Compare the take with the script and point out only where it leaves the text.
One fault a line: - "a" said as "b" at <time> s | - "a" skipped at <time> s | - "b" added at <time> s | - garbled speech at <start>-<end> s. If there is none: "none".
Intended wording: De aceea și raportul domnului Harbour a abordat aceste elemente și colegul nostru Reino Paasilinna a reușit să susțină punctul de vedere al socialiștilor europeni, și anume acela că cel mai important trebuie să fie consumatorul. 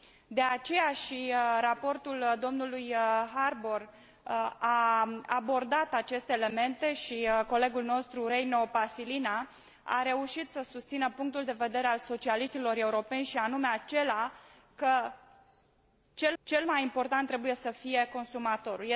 - "cel" added at 16.4 s